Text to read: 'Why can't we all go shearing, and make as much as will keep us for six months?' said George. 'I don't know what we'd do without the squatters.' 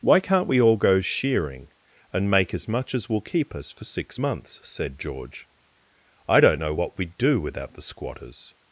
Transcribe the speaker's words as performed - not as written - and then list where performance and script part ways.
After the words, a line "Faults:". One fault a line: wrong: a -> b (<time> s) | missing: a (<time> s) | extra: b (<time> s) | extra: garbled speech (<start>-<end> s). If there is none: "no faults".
'Why can't we all go shearing, and make as much as will keep us for six months?' said George. 'I don't know what we'd do without the squatters.'
Faults:
no faults